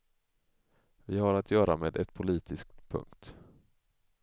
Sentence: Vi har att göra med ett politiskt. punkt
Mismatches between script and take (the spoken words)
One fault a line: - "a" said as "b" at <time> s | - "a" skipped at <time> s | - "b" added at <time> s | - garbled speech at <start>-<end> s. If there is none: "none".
none